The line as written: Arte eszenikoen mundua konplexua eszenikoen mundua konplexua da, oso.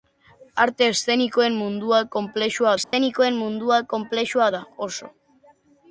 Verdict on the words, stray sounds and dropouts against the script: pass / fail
fail